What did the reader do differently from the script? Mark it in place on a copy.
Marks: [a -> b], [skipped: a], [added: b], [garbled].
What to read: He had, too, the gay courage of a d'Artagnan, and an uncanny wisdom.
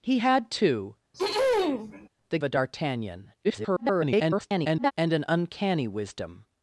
He had, too, the [skipped: gay courage of] a d'Artagnan, [garbled] and an uncanny wisdom.